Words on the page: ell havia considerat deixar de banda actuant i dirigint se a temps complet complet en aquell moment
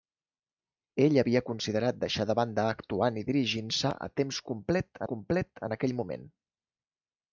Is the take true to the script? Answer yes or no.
yes